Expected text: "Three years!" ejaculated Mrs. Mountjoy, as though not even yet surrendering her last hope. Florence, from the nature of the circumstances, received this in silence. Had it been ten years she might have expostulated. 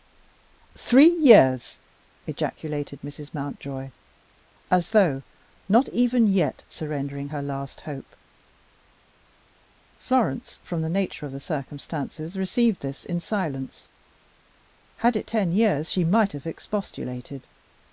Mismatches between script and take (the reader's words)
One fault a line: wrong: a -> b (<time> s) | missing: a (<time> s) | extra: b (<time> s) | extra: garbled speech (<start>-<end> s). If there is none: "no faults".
missing: been (15.3 s)